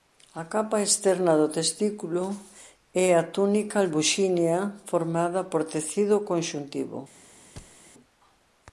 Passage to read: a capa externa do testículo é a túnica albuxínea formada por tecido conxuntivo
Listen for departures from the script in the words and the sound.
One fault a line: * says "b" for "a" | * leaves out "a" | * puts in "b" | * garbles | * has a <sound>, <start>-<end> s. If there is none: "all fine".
* has a thud, 7.6-7.8 s